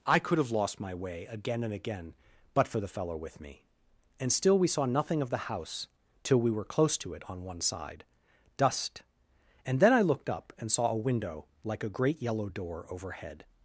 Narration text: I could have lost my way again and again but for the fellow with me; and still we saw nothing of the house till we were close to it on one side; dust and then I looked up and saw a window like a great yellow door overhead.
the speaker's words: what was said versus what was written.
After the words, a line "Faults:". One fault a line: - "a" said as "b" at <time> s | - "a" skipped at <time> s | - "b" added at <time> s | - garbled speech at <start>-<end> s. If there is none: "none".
I could have lost my way again and again but for the fellow with me; and still we saw nothing of the house till we were close to it on one side; dust and then I looked up and saw a window like a great yellow door overhead.
Faults:
none